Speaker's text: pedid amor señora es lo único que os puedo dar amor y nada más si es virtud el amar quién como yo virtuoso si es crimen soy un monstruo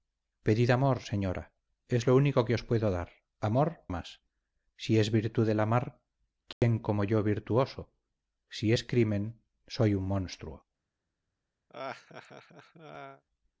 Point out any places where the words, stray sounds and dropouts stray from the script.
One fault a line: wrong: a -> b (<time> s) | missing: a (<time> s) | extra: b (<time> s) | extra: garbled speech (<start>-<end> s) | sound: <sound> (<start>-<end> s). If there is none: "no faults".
missing: y nada (3.7 s)
sound: dropout (6.5-6.6 s)
sound: laugh (11.7-13.2 s)